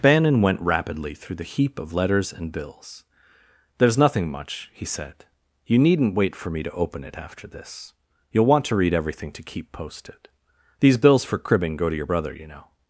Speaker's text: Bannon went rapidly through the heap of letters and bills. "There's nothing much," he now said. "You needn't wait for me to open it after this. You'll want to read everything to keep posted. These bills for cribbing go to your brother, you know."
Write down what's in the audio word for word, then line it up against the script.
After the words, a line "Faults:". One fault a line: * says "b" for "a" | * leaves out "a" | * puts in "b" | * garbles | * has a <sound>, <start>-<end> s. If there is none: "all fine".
Bannon went rapidly through the heap of letters and bills. "There's nothing much," he said. "You needn't wait for me to open it after this. You'll want to read everything to keep posted. These bills for cribbing go to your brother, you know."
Faults:
* leaves out "now"